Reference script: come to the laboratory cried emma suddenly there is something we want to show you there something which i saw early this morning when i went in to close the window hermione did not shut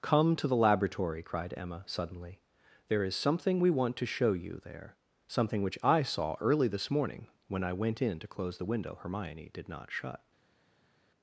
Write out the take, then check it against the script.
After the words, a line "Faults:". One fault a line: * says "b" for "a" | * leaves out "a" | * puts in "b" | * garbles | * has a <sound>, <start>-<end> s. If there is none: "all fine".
come to the laboratory cried emma suddenly there is something we want to show you there something which i saw early this morning when i went in to close the window hermione did not shut
Faults:
all fine